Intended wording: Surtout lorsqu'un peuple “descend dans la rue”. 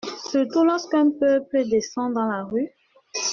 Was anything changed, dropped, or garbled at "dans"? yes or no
no